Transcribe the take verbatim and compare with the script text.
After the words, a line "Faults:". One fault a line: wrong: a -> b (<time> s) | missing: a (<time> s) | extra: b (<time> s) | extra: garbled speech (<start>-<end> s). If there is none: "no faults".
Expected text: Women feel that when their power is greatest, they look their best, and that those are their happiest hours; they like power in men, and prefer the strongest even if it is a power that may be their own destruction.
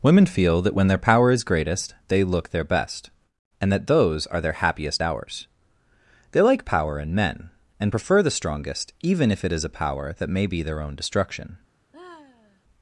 Women feel that when their power is greatest, they look their best, and that those are their happiest hours; they like power in men, and prefer the strongest even if it is a power that may be their own destruction.
Faults:
no faults